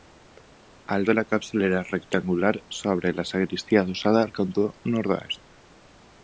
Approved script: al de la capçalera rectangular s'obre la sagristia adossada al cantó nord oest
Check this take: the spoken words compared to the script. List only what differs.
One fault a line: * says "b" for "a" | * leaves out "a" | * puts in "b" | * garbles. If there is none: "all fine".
all fine